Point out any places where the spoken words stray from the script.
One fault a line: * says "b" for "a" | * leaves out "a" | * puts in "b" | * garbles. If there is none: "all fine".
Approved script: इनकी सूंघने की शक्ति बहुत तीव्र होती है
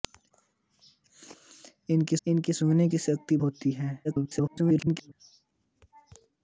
* puts in "इनकी"
* leaves out "बहुत तीव्र"
* garbles